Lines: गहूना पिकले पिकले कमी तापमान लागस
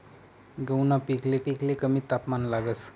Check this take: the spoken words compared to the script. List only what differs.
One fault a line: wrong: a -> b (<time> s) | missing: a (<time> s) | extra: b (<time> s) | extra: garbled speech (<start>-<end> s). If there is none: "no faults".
no faults